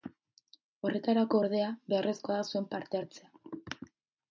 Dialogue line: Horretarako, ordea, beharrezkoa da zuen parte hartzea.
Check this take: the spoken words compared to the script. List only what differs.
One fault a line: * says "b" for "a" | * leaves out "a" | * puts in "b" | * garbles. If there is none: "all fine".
all fine